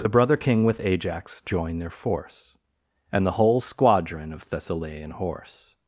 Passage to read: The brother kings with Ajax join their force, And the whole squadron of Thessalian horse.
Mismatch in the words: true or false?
true